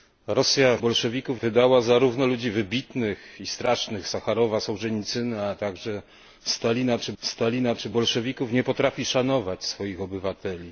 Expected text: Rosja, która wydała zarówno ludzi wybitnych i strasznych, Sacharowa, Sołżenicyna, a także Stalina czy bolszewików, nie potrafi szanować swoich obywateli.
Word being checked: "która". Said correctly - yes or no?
no